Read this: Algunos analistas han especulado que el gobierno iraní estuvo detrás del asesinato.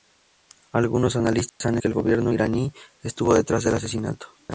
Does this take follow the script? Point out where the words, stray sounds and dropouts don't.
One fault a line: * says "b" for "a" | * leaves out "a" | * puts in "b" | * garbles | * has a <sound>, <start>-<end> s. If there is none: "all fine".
* has a dropout, 1.5-1.6 s
* leaves out "especulado"